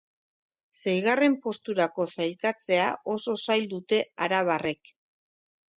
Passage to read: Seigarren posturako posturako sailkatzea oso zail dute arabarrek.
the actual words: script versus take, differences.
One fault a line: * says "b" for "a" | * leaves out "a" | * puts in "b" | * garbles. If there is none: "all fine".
* leaves out "posturako"